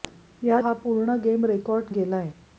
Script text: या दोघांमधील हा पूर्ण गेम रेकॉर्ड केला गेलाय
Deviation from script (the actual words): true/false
true